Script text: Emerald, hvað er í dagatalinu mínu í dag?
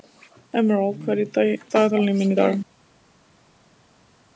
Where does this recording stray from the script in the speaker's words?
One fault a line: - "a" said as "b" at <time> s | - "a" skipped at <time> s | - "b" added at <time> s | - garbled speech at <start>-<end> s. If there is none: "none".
none